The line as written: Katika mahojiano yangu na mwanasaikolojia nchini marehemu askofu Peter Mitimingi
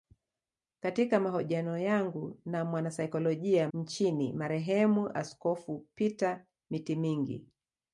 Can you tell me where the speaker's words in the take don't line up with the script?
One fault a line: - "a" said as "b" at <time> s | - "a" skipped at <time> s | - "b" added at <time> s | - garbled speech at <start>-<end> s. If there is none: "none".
none